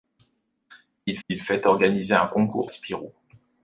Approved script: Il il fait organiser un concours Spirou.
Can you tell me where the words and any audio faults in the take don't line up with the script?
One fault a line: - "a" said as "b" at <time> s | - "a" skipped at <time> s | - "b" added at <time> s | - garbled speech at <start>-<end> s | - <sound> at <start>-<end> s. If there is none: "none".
none